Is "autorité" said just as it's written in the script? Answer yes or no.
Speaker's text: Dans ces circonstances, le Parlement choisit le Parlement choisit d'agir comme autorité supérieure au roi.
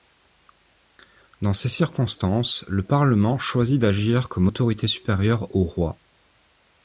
yes